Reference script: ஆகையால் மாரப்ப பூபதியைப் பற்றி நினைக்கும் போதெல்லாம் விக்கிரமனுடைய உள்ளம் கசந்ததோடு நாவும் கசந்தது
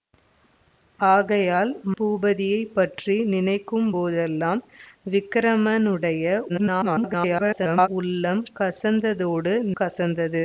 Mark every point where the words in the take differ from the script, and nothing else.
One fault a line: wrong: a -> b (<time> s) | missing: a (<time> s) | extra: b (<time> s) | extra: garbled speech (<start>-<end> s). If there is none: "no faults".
missing: மாரப்ப (1.7 s)
extra: garbled speech (6.5-7.9 s)
missing: நாவும் (9.5 s)